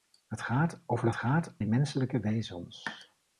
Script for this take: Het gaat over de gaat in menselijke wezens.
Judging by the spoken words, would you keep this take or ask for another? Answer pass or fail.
pass